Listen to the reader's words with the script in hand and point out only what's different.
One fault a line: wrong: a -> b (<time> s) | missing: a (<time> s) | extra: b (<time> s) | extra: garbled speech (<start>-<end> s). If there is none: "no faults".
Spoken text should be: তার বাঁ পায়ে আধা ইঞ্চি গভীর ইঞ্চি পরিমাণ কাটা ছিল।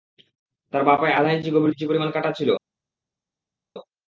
no faults